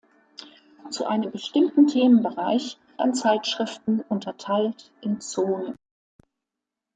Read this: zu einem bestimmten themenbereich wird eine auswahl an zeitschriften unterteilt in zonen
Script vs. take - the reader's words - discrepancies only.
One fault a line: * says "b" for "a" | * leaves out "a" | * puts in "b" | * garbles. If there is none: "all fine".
* leaves out "wird eine auswahl"